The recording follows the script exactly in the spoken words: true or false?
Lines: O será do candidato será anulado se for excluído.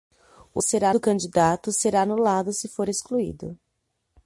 true